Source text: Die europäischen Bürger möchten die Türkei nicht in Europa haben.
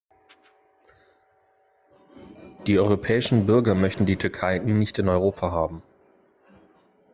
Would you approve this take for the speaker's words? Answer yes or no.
yes